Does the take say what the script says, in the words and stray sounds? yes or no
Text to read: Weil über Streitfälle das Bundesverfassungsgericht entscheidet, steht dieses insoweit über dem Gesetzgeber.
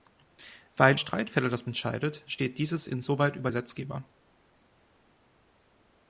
no